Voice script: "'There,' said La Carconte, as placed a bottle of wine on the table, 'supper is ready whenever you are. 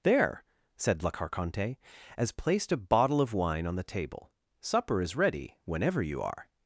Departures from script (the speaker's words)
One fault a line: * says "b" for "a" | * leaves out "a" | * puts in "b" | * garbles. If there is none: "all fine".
all fine